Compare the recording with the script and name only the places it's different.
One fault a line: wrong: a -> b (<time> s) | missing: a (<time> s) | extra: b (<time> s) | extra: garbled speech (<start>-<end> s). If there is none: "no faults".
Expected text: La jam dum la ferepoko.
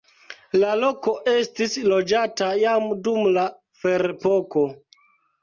extra: loko estis loĝata (0.8 s)